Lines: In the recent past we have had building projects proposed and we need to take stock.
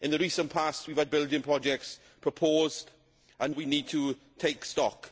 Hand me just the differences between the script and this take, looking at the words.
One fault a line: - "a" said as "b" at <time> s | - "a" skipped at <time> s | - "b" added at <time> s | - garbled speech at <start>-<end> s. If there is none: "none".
none